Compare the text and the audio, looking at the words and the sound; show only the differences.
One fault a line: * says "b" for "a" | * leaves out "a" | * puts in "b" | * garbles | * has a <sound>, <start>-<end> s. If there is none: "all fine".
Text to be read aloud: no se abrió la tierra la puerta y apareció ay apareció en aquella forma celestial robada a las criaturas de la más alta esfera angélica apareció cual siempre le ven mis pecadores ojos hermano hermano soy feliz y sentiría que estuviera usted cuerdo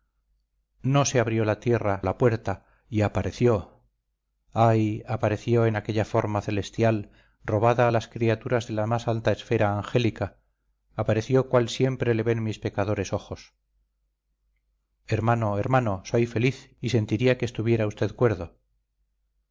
all fine